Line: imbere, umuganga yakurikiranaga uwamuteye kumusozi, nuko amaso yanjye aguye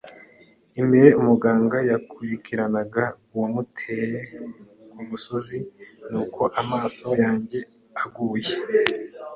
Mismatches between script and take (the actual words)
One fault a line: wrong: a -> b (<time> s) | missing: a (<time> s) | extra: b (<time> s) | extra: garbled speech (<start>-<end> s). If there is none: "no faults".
no faults